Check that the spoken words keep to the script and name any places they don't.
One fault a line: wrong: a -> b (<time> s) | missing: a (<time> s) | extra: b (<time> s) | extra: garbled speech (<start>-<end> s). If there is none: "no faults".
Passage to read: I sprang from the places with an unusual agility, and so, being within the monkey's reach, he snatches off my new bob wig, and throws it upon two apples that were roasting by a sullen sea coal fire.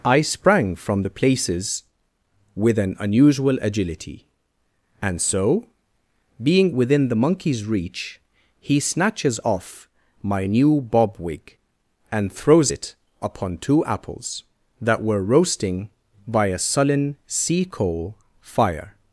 no faults